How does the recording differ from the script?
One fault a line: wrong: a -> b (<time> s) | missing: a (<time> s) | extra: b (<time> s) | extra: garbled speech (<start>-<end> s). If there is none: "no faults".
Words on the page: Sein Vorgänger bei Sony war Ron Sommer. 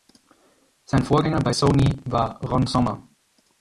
no faults